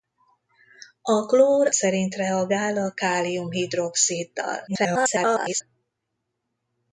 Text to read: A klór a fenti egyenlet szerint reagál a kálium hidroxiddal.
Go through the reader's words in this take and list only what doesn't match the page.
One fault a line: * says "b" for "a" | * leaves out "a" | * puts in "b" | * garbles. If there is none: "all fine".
* leaves out "a fenti egyenlet"
* garbles